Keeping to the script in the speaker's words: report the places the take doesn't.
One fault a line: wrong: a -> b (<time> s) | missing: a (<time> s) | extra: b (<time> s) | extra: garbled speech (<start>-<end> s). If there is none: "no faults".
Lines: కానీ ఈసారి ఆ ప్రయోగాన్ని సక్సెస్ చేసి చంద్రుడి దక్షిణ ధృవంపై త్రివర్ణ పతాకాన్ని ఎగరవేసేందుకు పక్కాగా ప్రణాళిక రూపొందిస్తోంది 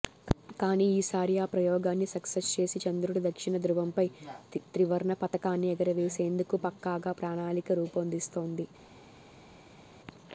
no faults